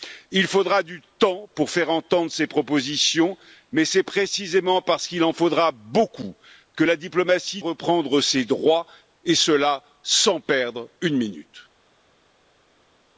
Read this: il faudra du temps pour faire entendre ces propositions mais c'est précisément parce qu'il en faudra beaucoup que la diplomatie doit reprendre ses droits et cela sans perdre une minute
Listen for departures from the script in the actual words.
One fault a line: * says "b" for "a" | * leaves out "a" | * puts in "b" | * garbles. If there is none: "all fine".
* leaves out "doit"